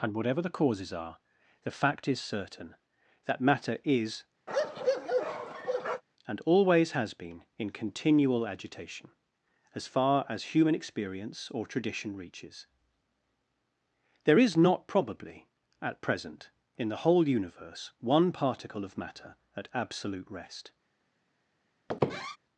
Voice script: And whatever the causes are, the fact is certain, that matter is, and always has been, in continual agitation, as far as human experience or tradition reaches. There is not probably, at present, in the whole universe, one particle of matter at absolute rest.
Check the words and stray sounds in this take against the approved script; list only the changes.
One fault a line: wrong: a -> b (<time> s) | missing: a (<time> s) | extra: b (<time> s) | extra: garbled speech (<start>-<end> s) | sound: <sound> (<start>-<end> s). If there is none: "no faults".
sound: bark (4.5-6.0 s)
sound: squeak (21.9-22.4 s)